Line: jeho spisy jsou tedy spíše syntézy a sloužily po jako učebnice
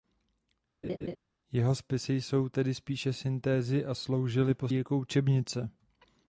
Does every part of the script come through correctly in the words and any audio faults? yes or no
no